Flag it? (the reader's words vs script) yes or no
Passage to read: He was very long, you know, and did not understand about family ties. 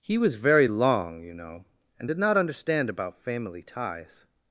no